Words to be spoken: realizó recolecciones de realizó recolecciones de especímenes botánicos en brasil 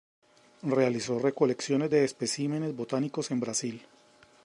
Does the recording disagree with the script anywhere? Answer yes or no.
yes